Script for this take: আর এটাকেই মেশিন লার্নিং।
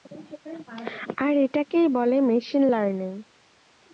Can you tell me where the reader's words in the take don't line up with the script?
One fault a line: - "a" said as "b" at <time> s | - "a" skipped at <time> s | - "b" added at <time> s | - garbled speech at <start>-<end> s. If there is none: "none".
- "বলে" added at 1.9 s